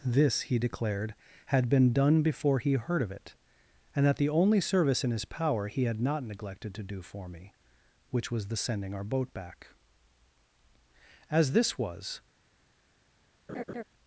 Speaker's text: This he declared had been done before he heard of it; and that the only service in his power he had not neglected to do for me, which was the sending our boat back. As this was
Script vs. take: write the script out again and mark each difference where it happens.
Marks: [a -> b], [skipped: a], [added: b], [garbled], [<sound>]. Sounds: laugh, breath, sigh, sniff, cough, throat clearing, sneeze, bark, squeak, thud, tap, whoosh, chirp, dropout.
This he declared had been done before he heard of it; and that the only service in his power he had not neglected to do for me, which was the sending our boat back. As this was [laugh]